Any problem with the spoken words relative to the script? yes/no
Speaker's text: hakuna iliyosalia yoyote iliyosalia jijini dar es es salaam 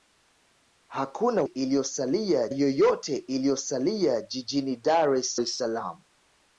no